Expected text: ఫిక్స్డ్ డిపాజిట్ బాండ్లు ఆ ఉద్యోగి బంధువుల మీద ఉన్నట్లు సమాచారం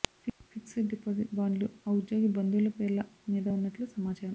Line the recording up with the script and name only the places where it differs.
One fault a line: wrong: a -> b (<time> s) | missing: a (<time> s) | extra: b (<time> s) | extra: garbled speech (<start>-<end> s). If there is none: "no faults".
extra: పేర్ల (2.8 s)